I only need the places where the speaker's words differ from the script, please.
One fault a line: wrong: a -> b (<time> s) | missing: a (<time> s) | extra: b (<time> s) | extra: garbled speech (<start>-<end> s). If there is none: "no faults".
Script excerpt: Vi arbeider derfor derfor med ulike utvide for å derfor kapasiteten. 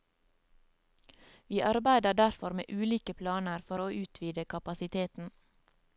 missing: derfor (2.5 s)
wrong: utvide -> planer (3.1 s)
wrong: derfor -> utvide (3.9 s)